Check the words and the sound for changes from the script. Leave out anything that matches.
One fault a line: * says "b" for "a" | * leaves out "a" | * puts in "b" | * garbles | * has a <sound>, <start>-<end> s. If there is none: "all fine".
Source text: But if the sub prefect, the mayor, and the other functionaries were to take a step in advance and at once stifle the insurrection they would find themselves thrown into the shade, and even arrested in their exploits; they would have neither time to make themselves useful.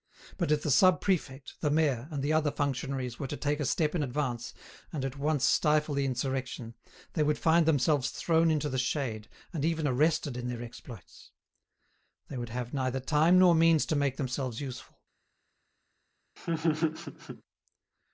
* puts in "nor means"
* has a laugh, 16.4-17.4 s